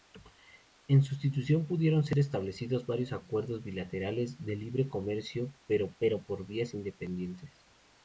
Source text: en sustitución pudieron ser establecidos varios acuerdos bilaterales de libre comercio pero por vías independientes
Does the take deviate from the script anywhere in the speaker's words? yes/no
yes